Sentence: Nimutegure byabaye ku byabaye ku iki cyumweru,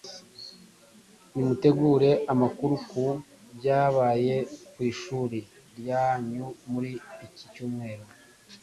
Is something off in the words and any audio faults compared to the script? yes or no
yes